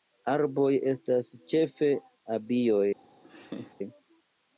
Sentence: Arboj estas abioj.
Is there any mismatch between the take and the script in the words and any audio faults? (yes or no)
yes